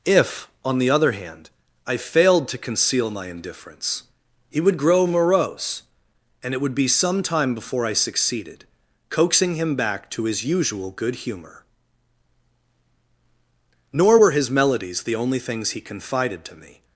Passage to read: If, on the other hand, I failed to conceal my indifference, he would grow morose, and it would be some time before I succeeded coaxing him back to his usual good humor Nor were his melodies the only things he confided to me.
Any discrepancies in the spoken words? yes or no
no